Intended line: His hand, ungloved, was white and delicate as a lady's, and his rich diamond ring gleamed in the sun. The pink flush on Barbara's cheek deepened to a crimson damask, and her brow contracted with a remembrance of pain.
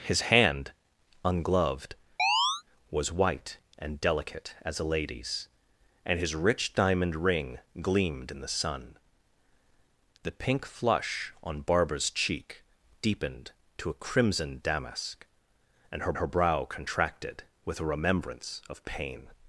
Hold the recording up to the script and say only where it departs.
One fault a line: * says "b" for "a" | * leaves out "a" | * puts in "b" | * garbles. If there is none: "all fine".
* puts in "her"